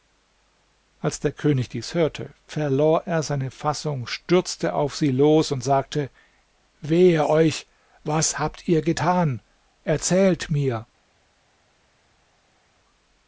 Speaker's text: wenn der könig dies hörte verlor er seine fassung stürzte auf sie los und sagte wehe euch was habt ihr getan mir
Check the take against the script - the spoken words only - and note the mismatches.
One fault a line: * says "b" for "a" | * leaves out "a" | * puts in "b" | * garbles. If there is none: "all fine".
* says "als" for "wenn"
* puts in "erzählt"